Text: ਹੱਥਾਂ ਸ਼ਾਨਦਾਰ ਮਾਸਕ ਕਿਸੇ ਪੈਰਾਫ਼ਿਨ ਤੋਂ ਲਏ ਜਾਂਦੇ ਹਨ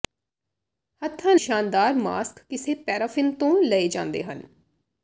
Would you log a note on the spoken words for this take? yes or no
no